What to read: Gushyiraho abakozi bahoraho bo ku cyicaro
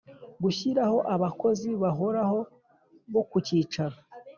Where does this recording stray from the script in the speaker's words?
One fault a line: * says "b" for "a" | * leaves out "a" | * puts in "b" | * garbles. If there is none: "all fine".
all fine